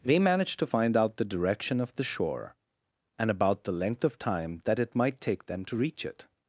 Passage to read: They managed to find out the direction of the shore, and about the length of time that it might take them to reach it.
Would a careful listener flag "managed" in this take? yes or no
no